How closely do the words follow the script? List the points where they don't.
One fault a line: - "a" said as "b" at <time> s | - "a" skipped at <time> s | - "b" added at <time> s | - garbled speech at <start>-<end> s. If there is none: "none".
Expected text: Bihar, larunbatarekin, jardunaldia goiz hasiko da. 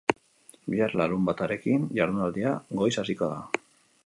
none